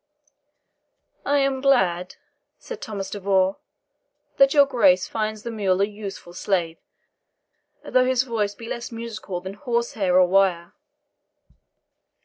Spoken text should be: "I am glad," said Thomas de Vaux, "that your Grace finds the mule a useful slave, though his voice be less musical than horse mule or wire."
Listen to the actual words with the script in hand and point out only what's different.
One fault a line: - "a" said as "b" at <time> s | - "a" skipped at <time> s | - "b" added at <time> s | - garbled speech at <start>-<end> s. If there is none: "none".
- "mule" said as "hair" at 9.9 s